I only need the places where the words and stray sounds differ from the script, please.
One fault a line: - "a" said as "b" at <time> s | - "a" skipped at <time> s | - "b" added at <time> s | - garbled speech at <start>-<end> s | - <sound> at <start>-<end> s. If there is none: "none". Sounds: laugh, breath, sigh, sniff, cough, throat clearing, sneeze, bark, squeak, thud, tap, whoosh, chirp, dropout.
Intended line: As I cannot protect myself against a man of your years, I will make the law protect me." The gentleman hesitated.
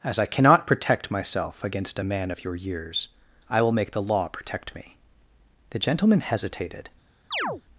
- chirp at 7.3-7.6 s